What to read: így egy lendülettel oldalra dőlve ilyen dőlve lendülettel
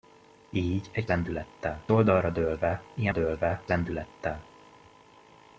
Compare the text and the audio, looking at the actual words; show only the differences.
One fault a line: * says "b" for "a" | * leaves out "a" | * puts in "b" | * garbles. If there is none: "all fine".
all fine